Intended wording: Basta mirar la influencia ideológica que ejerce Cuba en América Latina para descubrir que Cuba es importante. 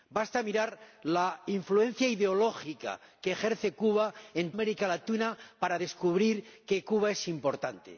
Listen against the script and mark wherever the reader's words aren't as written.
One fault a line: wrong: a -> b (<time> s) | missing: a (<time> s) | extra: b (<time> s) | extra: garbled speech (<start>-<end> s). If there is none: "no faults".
no faults